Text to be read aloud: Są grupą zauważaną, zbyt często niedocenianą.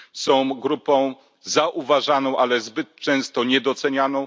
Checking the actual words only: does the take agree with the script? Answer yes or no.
no